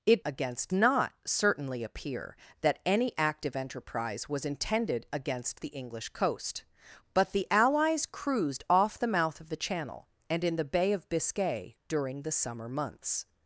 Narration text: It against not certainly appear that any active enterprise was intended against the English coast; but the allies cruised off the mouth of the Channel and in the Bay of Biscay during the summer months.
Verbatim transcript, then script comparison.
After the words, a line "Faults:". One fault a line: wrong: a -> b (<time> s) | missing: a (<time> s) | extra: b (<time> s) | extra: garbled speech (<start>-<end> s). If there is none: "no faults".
It against not certainly appear that any active enterprise was intended against the English coast; but the allies cruised off the mouth of the Channel and in the Bay of Biscay during the summer months.
Faults:
no faults